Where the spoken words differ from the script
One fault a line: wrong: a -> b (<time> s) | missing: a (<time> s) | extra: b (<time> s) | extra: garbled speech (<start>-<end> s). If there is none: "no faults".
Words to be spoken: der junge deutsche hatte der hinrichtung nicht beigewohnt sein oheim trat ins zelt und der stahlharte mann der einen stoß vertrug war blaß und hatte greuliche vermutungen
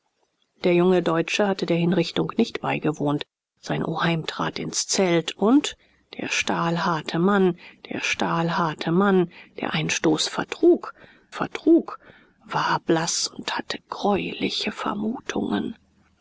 extra: stahlharte mann der (8.0 s)
extra: vertrug (11.3 s)